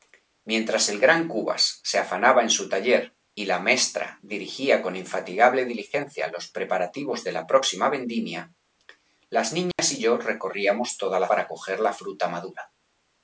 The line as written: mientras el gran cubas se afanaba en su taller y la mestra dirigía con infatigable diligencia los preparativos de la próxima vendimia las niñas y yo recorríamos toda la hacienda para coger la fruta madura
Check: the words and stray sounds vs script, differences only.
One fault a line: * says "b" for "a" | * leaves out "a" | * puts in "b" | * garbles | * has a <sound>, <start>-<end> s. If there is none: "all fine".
* has a dropout, 9.7-9.8 s
* leaves out "hacienda"